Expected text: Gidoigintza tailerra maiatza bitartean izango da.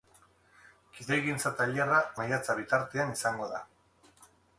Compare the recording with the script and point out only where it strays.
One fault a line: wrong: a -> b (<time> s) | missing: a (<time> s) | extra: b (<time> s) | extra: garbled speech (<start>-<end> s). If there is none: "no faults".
no faults